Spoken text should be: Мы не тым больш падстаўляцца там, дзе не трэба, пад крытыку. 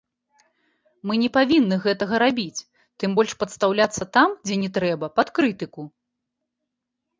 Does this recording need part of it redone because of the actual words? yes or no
yes